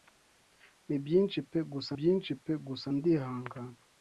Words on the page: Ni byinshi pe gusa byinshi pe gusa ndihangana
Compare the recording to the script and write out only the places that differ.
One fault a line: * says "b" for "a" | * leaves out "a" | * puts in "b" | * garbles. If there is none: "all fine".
all fine